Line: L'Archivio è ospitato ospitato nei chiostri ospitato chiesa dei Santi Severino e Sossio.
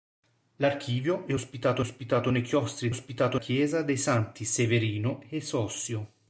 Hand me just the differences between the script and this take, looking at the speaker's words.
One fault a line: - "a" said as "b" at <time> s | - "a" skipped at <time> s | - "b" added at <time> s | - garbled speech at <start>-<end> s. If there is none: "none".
none